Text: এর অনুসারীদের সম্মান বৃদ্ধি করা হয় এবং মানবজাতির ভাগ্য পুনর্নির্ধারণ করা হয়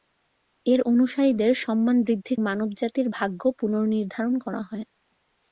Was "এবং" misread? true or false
true